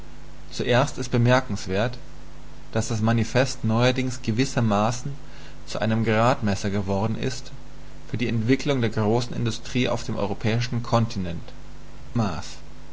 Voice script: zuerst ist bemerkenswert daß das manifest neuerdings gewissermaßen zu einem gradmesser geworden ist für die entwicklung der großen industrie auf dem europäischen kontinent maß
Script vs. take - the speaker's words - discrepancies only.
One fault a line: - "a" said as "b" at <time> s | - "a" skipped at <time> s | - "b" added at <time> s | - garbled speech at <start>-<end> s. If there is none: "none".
none